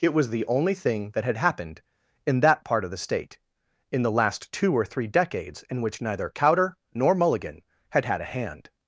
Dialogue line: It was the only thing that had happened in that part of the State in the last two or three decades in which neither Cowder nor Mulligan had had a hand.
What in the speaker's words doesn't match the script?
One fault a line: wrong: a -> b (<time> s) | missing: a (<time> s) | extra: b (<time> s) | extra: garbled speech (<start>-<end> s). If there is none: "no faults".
no faults